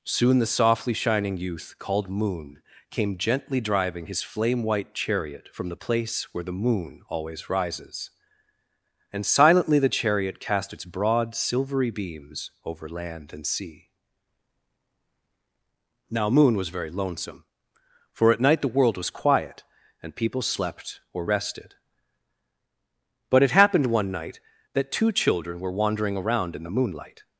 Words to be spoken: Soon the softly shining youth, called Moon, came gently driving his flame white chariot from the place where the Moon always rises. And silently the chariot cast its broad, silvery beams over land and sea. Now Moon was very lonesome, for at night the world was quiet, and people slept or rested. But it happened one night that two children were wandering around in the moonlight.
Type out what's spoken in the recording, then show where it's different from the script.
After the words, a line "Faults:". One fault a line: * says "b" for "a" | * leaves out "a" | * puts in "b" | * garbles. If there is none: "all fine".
Soon the softly shining youth, called Moon, came gently driving his flame white chariot from the place where the Moon always rises. And silently the chariot cast its broad, silvery beams over land and sea. Now Moon was very lonesome, for at night the world was quiet, and people slept or rested. But it happened one night that two children were wandering around in the moonlight.
Faults:
all fine